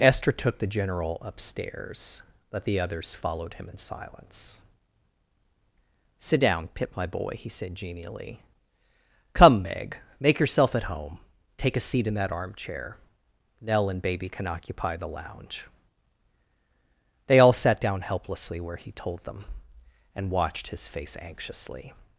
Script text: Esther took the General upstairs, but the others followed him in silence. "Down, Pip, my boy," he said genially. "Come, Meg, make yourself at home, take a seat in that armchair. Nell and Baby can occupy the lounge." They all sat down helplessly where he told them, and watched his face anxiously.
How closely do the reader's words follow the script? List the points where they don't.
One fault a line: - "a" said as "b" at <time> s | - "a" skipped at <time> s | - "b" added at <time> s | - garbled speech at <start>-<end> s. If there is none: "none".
- "Sit" added at 6.2 s